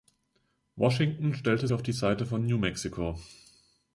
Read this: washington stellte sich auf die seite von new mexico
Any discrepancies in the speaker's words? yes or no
yes